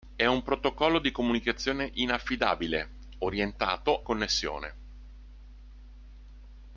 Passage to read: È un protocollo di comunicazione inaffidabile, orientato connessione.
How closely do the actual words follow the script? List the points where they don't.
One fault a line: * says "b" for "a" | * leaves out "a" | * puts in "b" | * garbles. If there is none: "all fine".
all fine